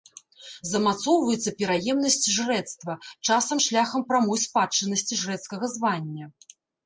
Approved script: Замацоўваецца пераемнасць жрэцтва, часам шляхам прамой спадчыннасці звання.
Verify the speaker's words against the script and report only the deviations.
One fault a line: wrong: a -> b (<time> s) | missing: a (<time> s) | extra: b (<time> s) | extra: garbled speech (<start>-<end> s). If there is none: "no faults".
extra: жрэцкага (5.2 s)